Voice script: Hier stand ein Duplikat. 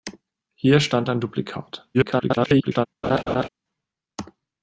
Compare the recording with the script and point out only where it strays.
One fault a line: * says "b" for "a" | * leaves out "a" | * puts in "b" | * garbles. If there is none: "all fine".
* garbles